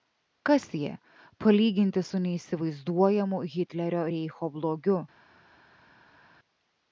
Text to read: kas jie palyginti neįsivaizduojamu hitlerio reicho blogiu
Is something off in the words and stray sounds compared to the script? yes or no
yes